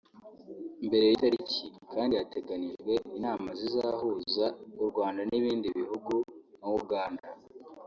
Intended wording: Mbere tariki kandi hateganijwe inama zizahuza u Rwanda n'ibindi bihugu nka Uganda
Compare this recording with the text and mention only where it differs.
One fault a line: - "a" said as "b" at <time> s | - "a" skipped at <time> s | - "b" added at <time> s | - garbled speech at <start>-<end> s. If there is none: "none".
none